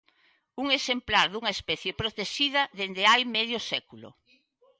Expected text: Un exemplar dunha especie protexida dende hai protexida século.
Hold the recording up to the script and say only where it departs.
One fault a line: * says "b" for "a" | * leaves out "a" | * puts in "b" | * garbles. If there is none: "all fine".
* says "medio" for "protexida"